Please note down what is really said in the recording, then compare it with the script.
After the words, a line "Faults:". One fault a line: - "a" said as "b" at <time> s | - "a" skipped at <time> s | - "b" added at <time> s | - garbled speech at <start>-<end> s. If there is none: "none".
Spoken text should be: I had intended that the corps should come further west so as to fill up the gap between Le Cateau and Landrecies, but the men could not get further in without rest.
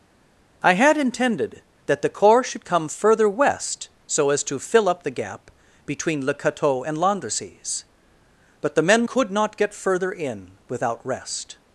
I had intended that the corps should come further west so as to fill up the gap between Le Cateau and Landrecies, but the men could not get further in without rest.
Faults:
none